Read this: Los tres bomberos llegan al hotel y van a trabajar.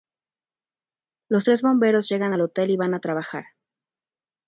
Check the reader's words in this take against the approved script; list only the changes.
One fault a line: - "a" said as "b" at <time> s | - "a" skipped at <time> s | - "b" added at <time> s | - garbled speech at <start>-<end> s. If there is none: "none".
none